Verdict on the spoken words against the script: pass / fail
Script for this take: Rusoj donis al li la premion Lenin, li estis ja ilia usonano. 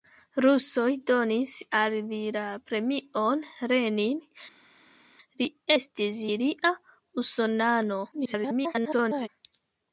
fail